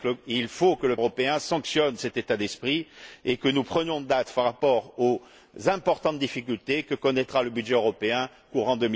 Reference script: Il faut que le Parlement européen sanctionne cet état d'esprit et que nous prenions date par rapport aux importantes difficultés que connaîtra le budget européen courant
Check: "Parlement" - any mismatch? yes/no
yes